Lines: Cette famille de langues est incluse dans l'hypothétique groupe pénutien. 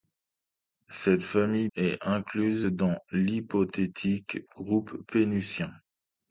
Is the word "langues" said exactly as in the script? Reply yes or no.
no